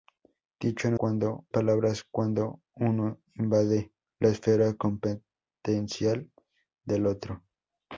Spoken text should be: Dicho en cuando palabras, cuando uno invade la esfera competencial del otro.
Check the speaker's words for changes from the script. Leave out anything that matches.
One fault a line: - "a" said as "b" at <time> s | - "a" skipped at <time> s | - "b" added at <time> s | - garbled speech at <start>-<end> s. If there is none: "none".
none